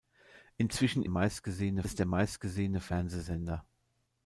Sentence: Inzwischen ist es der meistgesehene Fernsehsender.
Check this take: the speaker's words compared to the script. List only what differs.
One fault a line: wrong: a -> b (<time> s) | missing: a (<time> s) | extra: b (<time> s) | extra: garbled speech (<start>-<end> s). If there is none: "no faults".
wrong: ist -> meistgesehene (1.1 s)